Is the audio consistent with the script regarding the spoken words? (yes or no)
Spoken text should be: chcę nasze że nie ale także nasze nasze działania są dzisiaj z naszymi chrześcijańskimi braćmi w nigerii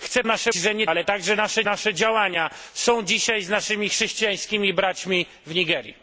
yes